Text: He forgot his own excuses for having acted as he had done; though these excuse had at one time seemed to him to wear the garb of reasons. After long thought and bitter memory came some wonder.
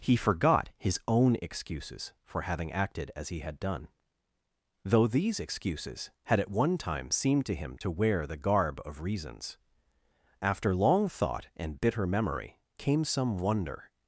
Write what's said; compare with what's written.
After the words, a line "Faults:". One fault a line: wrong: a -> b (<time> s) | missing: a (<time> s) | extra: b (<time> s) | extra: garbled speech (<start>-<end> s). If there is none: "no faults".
He forgot his own excuses for having acted as he had done; though these excuses had at one time seemed to him to wear the garb of reasons. After long thought and bitter memory came some wonder.
Faults:
wrong: excuse -> excuses (5.4 s)